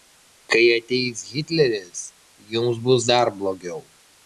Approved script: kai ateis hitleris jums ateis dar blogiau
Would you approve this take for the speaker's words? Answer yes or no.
no